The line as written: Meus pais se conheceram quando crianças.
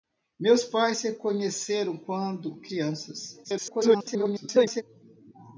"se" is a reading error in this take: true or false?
false